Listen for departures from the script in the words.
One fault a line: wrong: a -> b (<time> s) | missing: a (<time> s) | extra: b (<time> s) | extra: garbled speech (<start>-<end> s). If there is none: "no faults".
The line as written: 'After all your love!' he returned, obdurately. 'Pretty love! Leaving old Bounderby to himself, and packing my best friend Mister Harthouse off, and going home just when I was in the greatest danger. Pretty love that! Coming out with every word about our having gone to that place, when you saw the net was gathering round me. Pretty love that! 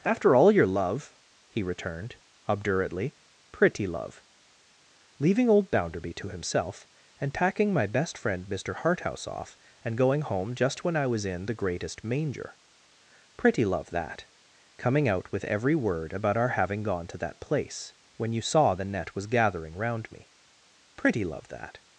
wrong: danger -> manger (12.0 s)